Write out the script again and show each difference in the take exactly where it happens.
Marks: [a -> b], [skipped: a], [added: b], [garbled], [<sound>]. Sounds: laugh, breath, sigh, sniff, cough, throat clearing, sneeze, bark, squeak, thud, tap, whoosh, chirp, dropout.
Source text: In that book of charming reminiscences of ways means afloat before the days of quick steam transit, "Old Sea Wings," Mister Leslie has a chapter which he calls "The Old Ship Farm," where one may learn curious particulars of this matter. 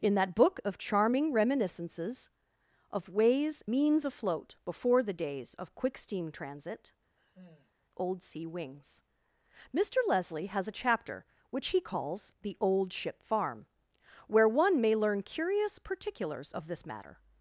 In that book of charming reminiscences of ways means afloat before the days of quick steam transit, [sigh] "Old Sea Wings," Mister Leslie has a chapter which he calls "The Old Ship Farm," where one may learn curious particulars of this matter.